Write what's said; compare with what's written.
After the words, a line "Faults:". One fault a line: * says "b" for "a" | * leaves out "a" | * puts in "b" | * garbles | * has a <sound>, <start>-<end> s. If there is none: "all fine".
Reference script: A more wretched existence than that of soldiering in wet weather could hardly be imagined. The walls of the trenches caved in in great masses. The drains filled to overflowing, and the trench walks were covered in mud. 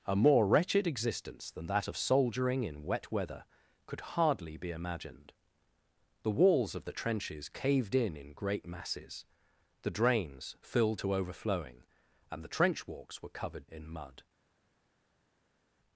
A more wretched existence than that of soldiering in wet weather could hardly be imagined. The walls of the trenches caved in in great masses. The drains filled to overflowing, and the trench walks were covered in mud.
Faults:
all fine